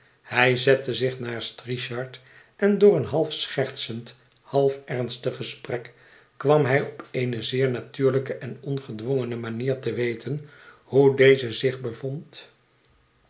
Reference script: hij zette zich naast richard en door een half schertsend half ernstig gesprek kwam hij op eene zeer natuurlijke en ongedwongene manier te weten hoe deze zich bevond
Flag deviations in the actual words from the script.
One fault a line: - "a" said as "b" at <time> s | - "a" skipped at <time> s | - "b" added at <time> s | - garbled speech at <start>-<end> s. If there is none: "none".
none